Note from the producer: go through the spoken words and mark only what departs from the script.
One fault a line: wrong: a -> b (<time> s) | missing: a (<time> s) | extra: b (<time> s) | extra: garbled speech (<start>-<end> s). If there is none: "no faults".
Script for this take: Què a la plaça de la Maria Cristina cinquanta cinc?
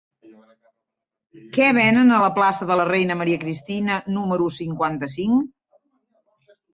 extra: venen (1.8 s)
extra: Reina (2.9 s)
extra: número (4.2 s)